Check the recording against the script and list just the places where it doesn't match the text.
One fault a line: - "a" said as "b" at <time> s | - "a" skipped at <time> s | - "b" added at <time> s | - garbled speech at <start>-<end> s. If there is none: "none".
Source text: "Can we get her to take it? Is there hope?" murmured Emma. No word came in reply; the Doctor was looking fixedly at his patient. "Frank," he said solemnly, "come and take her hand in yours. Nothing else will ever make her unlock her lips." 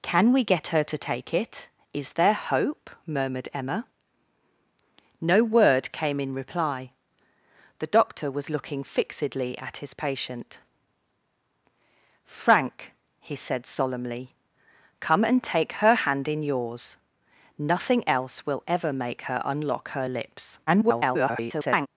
- garbled speech at 20.7-21.9 s